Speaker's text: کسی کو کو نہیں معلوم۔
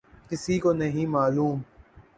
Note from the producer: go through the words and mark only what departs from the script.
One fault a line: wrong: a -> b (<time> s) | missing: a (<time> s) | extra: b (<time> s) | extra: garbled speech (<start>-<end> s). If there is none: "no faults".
missing: کو (0.7 s)